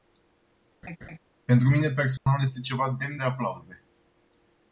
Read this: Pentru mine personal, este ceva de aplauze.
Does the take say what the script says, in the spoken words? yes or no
no